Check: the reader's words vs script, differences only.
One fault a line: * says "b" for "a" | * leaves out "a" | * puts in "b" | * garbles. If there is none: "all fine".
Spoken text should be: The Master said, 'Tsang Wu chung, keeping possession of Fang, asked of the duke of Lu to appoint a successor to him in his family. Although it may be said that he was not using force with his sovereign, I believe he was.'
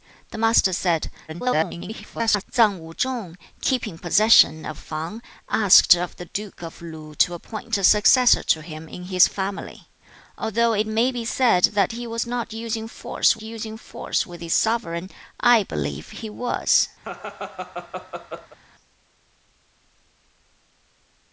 * garbles
* puts in "using force"